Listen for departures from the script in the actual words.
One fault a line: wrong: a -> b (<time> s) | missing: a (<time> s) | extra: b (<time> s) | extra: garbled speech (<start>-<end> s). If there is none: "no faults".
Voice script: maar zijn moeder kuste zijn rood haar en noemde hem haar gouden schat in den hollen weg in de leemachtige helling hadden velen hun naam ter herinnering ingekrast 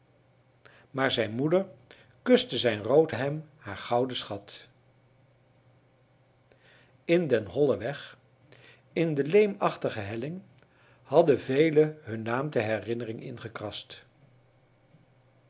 missing: haar en noemde (3.1 s)